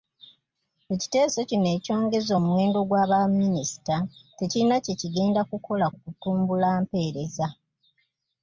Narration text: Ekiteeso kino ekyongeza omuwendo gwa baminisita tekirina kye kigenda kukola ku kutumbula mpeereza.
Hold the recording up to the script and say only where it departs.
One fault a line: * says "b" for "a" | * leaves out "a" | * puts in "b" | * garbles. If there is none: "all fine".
all fine